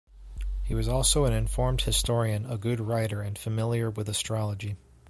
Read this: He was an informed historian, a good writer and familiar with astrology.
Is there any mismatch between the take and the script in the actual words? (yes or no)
yes